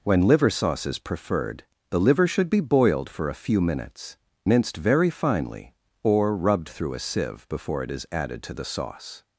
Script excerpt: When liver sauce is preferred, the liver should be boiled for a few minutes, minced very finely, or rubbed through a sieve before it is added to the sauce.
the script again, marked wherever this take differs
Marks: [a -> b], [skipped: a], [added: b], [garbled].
When liver sauce is preferred, the liver should be boiled for a few minutes, minced very finely, or rubbed through a sieve before it is added to the sauce.